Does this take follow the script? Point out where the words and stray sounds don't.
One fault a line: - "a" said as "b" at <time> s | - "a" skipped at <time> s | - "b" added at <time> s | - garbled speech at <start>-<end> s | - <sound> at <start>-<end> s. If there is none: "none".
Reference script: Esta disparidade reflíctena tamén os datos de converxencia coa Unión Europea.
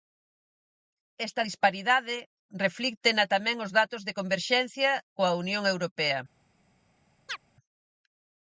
- chirp at 7.3-7.4 s